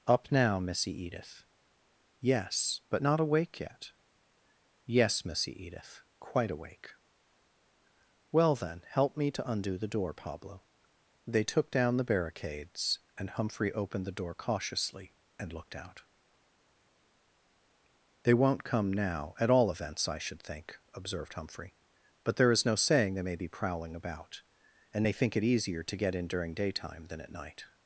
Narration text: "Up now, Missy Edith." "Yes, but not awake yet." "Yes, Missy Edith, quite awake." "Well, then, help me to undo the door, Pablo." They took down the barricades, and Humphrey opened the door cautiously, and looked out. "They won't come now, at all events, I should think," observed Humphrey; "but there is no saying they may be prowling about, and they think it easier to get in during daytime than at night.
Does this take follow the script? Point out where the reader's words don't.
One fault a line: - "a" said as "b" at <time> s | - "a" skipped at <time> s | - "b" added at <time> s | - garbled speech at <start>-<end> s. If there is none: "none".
none